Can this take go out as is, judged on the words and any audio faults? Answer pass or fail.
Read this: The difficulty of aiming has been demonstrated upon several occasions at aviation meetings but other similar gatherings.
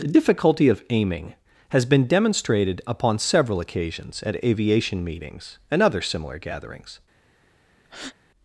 fail